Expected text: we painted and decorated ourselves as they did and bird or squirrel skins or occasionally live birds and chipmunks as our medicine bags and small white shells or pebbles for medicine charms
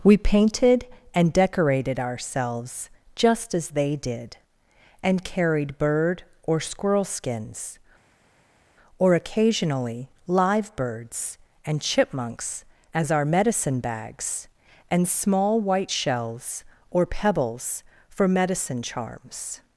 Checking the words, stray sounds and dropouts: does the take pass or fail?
fail